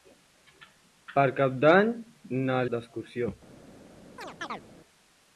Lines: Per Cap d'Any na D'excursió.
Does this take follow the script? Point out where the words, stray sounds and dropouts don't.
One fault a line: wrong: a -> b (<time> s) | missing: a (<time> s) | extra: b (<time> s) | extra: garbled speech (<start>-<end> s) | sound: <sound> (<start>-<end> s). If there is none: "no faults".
sound: chirp (4.2-4.6 s)